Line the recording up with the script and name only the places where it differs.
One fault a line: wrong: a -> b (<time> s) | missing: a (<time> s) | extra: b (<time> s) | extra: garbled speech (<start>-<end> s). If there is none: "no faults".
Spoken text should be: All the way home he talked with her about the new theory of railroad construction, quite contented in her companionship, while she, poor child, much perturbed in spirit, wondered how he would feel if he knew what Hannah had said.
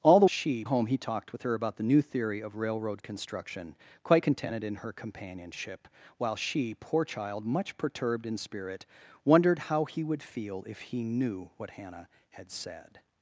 wrong: way -> she (0.2 s)